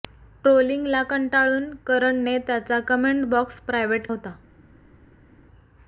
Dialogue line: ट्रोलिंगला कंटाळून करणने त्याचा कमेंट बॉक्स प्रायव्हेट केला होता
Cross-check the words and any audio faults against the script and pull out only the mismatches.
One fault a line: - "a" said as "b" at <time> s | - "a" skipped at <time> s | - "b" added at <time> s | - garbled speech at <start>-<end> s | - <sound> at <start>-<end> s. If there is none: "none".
- "केला" skipped at 4.1 s